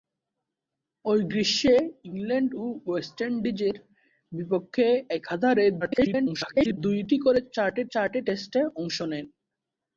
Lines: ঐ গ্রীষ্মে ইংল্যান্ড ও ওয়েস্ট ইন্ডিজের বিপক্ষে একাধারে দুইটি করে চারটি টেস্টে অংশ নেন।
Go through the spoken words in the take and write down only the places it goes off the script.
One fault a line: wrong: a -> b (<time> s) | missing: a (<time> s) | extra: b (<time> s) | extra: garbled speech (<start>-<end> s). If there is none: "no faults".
extra: garbled speech (5.8-6.8 s)
extra: চারটি (7.9 s)